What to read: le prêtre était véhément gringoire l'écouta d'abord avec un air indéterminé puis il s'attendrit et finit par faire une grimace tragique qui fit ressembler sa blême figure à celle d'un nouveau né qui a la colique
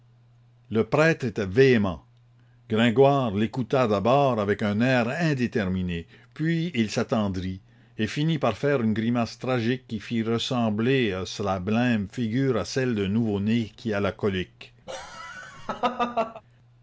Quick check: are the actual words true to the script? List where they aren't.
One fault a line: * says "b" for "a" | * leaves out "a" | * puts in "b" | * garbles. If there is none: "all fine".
all fine